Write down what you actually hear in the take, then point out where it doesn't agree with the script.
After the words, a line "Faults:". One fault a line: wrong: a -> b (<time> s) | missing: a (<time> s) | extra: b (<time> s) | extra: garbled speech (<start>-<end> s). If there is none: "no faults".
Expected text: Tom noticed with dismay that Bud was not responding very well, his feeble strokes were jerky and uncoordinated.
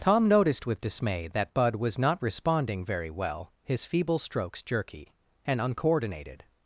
Tom noticed with dismay that Bud was not responding very well, his feeble strokes jerky and uncoordinated.
Faults:
missing: were (4.6 s)